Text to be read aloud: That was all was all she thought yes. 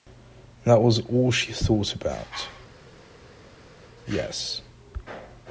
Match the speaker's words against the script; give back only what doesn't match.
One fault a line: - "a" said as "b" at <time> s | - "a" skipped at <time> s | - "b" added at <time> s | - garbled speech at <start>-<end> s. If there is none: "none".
- "was all" skipped at 1.3 s
- "about" added at 1.9 s